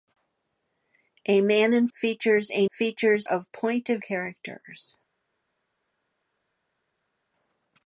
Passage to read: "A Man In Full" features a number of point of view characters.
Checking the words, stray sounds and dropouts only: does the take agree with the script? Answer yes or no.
no